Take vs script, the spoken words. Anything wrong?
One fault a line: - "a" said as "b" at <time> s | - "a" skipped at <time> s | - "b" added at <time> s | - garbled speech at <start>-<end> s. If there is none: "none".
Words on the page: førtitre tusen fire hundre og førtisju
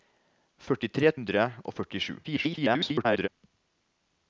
- "tusen fire" skipped at 1.1 s
- garbled speech at 2.2-3.3 s